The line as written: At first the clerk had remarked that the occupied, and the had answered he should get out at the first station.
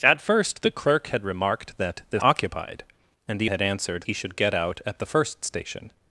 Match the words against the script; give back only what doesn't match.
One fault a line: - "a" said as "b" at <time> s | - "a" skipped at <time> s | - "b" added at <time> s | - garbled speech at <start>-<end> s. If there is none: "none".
none